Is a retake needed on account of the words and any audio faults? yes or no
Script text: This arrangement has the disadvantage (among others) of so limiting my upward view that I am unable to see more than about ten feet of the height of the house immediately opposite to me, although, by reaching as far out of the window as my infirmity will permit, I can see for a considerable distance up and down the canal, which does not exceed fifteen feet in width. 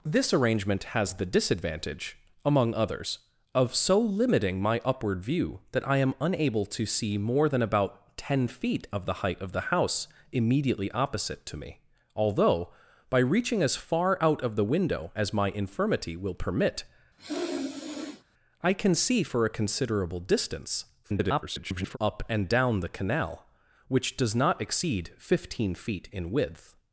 yes